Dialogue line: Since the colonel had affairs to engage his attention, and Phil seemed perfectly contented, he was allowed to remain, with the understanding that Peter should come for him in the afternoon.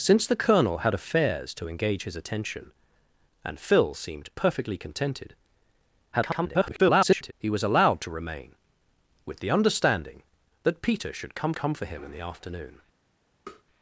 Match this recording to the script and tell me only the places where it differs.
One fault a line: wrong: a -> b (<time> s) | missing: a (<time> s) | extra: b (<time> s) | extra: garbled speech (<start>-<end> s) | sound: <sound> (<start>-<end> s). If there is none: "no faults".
extra: garbled speech (6.1-7.3 s)
extra: come (11.5 s)
sound: tap (13.5-13.6 s)